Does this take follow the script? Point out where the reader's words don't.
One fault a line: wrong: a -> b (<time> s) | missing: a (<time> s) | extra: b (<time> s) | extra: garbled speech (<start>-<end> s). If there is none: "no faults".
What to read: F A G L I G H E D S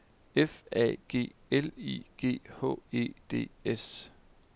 no faults